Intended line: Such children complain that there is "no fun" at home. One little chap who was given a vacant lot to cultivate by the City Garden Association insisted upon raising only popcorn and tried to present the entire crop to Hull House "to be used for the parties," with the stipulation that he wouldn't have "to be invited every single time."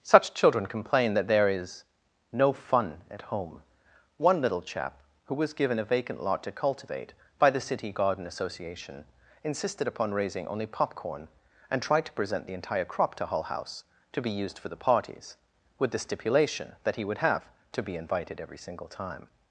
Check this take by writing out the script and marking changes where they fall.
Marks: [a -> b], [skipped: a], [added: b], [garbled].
Such children complain that there is "no fun" at home. One little chap who was given a vacant lot to cultivate by the City Garden Association insisted upon raising only popcorn and tried to present the entire crop to Hull House "to be used for the parties," with the stipulation that he [wouldn't -> would] have "to be invited every single time."